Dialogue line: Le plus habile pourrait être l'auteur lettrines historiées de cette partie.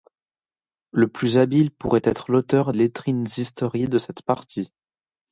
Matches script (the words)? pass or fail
pass